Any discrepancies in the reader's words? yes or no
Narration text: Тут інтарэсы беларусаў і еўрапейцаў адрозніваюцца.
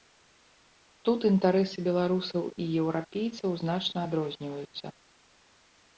yes